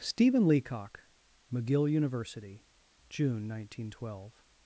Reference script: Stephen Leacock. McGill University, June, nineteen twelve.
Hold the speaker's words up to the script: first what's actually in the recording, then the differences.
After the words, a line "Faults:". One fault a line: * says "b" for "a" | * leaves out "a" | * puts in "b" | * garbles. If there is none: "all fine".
Stephen Leacock. McGill University, June, nineteen twelve.
Faults:
all fine